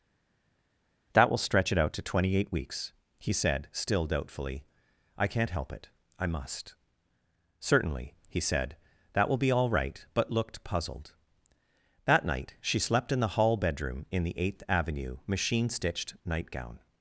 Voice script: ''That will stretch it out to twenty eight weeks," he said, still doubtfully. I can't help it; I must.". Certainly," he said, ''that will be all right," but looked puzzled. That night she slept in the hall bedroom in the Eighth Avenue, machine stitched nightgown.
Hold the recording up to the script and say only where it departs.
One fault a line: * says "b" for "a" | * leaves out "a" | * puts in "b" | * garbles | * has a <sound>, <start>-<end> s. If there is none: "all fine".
all fine